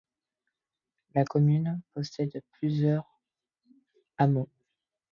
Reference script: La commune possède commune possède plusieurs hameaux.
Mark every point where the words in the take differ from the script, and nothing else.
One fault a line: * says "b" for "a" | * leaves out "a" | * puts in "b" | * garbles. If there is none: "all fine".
* leaves out "commune possède"